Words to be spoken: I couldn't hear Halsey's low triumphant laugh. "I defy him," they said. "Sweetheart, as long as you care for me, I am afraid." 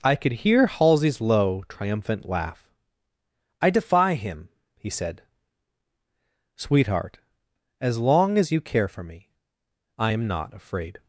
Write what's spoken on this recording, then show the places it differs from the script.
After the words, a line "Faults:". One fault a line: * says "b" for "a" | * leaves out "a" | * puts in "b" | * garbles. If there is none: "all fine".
I could hear Halsey's low triumphant laugh. "I defy him," he said. "Sweetheart, as long as you care for me, I am not afraid."
Faults:
* says "could" for "couldn't"
* says "he" for "they"
* puts in "not"